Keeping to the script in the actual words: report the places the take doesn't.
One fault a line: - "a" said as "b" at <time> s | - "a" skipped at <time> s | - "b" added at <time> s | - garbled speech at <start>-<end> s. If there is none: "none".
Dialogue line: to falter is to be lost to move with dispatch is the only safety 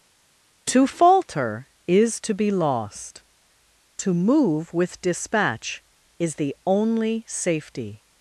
none